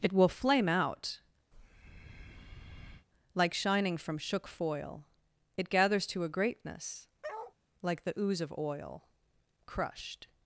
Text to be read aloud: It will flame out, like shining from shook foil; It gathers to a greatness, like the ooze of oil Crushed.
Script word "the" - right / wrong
right